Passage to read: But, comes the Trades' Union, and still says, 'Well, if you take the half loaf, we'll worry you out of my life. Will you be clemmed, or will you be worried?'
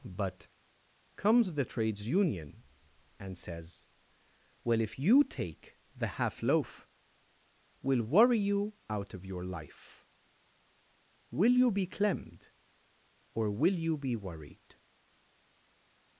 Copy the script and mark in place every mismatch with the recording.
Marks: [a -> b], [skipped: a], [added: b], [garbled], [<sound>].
But, comes the Trades' Union, and [skipped: still] says, 'Well, if you take the half loaf, we'll worry you out of [my -> your] life. Will you be clemmed, or will you be worried?'